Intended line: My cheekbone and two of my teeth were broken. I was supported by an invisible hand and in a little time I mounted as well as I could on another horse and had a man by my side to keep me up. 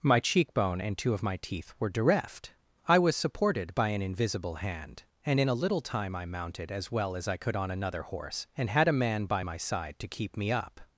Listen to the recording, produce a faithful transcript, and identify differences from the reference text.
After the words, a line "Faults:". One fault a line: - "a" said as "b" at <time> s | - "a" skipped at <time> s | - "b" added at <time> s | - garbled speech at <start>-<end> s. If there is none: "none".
My cheekbone and two of my teeth were direft. I was supported by an invisible hand and in a little time I mounted as well as I could on another horse and had a man by my side to keep me up.
Faults:
- "broken" said as "direft" at 1.9 s